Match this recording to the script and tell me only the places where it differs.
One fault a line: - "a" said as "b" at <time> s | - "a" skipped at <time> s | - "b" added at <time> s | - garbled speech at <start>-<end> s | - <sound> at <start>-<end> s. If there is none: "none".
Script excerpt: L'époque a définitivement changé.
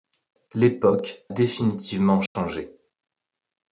- "a" skipped at 1.2 s
- dropout at 2.3-2.4 s